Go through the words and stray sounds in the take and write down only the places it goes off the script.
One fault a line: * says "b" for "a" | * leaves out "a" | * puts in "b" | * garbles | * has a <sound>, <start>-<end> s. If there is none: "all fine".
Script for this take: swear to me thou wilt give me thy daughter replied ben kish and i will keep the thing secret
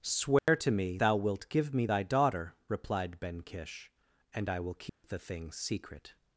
* has a dropout, 0.4-0.5 s
* has a dropout, 4.9-5.0 s